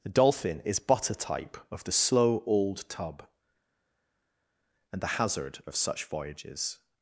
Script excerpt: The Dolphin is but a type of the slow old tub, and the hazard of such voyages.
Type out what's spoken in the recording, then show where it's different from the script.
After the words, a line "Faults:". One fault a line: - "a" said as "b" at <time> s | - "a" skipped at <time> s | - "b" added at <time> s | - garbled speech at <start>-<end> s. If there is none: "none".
The Dolphin is but a type of the slow old tub, and the hazard of such voyages.
Faults:
none